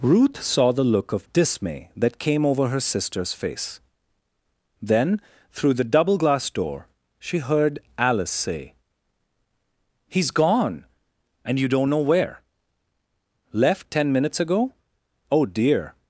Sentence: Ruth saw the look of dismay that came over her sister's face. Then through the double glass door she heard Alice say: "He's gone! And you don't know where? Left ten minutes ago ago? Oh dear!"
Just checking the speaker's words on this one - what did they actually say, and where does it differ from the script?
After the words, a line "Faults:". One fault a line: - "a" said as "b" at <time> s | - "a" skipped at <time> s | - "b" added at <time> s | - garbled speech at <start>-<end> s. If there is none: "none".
Ruth saw the look of dismay that came over her sister's face. Then through the double glass door she heard Alice say: "He's gone! And you don't know where? Left ten minutes ago? Oh dear!"
Faults:
- "ago" skipped at 14.7 s